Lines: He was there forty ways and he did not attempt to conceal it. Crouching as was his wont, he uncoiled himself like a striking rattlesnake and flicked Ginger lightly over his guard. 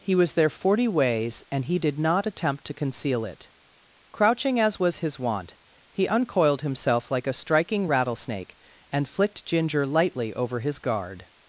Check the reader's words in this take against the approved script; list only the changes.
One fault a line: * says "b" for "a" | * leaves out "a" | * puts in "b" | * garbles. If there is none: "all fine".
all fine